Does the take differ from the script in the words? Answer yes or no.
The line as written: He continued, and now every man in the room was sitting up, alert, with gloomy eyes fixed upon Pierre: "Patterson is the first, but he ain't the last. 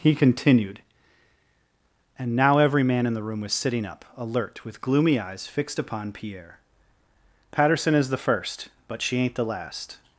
yes